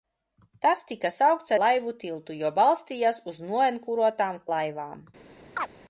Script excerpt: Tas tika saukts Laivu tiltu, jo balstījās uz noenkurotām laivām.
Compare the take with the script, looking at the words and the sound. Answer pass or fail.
fail